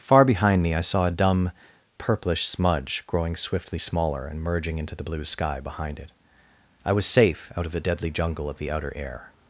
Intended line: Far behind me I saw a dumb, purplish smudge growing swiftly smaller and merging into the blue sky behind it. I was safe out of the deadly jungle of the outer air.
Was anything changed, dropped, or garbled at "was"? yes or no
no